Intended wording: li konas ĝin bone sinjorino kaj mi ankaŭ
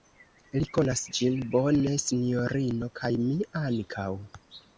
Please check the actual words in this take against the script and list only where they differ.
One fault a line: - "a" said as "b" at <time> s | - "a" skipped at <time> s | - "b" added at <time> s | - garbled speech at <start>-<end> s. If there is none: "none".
none